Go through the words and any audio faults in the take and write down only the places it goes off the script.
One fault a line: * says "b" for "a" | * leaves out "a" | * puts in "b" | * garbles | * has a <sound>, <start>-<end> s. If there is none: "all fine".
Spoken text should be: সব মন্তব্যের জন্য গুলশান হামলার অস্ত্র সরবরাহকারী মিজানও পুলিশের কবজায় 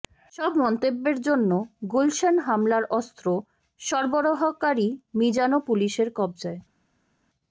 all fine